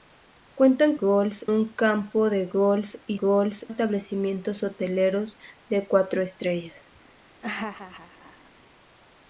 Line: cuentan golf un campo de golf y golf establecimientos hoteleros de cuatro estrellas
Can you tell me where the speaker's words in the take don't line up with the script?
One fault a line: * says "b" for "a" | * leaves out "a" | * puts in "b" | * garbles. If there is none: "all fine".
all fine